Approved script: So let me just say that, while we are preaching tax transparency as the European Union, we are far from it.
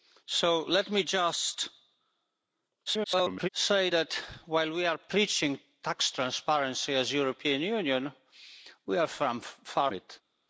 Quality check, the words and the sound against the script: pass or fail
fail